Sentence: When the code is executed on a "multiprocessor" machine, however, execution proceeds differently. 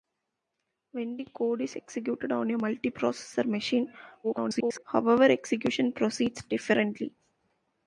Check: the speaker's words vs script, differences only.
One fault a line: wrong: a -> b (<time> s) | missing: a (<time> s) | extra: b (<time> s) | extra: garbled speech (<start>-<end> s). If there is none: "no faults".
extra: garbled speech (4.2-4.8 s)